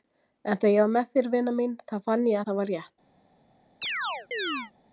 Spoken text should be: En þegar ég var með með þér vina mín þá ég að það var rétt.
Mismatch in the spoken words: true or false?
true